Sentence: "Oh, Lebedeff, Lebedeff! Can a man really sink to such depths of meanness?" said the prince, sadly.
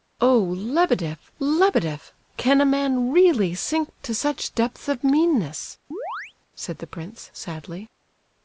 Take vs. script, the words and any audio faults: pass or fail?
fail